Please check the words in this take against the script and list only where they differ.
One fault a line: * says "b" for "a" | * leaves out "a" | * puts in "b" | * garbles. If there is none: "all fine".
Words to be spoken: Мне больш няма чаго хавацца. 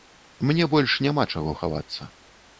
all fine